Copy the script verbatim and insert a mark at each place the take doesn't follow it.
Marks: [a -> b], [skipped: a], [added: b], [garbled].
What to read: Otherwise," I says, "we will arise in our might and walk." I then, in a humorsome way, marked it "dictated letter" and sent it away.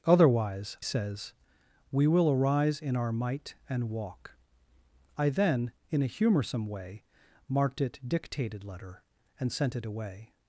Otherwise," [skipped: I] says, "we will arise in our might and walk." I then, in a humorsome way, marked it "dictated letter" and sent it away.